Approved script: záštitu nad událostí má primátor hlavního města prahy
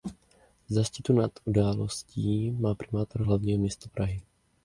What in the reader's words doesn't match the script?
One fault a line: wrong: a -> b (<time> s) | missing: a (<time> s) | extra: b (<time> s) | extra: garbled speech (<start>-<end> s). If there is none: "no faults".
no faults